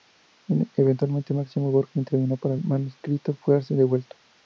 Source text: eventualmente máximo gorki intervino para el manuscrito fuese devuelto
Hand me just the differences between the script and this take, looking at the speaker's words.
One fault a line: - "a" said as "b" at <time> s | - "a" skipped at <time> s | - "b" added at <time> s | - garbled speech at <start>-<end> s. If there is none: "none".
none